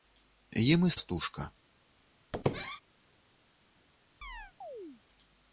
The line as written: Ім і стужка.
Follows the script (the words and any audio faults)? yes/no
no